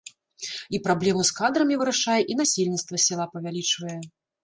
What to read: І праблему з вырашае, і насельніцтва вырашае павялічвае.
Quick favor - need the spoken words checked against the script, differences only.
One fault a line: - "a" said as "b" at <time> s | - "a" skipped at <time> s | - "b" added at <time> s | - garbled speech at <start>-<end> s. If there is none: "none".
- "кадрамі" added at 1.4 s
- "вырашае" said as "сяла" at 3.1 s